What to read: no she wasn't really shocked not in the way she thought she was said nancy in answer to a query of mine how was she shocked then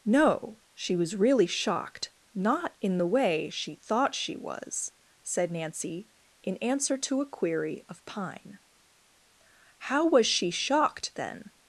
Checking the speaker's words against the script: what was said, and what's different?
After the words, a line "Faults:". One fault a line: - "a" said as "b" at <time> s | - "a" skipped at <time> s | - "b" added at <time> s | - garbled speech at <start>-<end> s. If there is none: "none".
no she was really shocked not in the way she thought she was said nancy in answer to a query of pine how was she shocked then
Faults:
- "wasn't" said as "was" at 0.9 s
- "mine" said as "pine" at 8.1 s